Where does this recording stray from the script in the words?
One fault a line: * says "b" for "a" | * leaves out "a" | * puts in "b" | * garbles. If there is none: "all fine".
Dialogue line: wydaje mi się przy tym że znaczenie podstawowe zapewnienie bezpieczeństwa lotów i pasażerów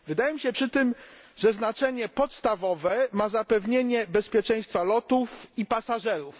* puts in "ma"